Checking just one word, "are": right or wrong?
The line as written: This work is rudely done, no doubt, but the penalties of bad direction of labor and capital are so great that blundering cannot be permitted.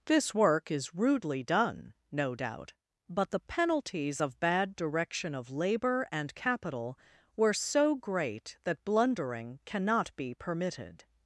wrong